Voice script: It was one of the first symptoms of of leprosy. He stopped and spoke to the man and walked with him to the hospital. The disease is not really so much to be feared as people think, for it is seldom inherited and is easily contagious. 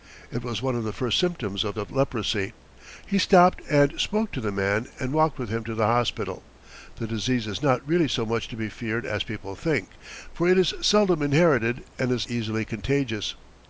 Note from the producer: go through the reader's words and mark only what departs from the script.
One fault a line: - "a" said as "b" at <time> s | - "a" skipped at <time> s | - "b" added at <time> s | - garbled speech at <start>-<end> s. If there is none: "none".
none